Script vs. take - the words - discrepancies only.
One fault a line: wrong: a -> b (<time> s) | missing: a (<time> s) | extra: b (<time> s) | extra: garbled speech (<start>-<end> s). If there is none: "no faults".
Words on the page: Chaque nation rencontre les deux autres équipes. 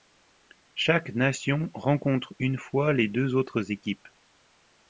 extra: une fois (2.4 s)